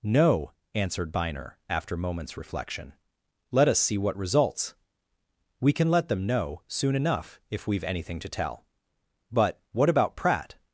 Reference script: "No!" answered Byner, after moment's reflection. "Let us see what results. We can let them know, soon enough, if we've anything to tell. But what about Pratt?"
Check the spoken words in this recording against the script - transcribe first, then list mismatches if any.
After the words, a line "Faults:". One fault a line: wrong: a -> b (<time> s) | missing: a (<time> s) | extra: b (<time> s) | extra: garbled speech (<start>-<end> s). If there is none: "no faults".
"No!" answered Byner, after moment's reflection. "Let us see what results. We can let them know, soon enough, if we've anything to tell. But what about Pratt?"
Faults:
no faults